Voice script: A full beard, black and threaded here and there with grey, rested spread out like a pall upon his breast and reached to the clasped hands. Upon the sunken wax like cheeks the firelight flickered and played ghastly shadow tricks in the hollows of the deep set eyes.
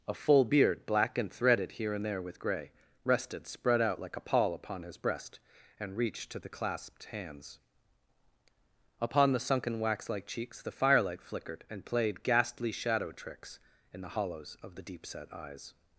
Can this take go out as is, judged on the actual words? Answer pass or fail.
pass